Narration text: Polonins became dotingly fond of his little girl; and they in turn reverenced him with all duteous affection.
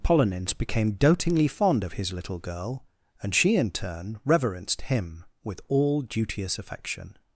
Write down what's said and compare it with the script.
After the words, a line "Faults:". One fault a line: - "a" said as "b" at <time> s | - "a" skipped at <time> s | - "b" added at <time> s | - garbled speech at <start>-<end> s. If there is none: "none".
Polonins became dotingly fond of his little girl; and she in turn reverenced him with all duteous affection.
Faults:
- "they" said as "she" at 3.4 s